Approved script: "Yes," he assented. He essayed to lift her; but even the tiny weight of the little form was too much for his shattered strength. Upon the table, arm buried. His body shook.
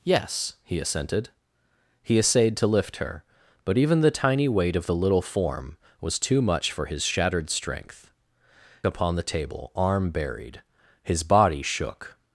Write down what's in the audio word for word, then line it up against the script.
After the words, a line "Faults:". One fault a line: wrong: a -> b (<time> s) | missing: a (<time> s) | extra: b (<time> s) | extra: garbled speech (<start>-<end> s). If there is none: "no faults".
"Yes," he assented. He essayed to lift her; but even the tiny weight of the little form was too much for his shattered strength. Upon the table, arm buried. His body shook.
Faults:
no faults